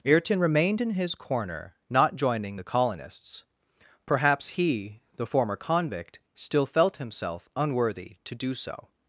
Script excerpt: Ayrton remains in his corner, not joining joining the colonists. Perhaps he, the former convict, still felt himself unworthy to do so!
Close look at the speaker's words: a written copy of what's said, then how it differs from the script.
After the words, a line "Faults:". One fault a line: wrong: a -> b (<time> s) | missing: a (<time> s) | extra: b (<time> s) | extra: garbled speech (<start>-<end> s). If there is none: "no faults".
Ayrton remained in his corner, not joining the colonists. Perhaps he, the former convict, still felt himself unworthy to do so!
Faults:
wrong: remains -> remained (0.4 s)
missing: joining (2.6 s)